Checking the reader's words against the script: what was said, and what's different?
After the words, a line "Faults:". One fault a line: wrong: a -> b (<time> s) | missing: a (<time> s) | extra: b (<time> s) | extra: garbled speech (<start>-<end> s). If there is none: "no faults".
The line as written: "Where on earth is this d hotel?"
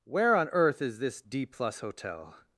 "Where on earth is this d plus hotel?"
Faults:
extra: plus (1.4 s)